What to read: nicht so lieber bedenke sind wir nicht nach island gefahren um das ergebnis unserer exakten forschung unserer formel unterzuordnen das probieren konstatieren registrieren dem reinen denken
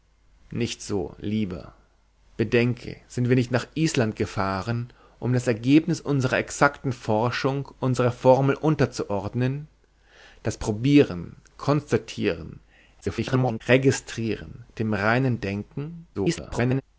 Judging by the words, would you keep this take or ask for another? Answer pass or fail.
fail